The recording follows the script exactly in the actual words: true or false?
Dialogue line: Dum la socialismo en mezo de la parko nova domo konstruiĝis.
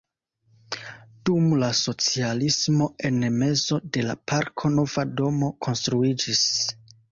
true